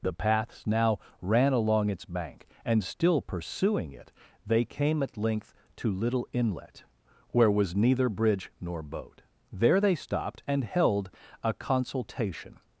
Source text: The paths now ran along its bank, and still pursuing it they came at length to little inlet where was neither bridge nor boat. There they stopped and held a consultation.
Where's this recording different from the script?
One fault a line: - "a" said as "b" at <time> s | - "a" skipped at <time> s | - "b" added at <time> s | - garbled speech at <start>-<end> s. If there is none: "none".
none